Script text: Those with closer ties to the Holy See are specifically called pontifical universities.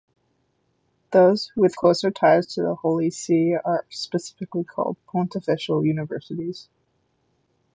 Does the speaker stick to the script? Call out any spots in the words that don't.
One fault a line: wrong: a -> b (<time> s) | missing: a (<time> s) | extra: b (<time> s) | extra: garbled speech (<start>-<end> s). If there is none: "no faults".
no faults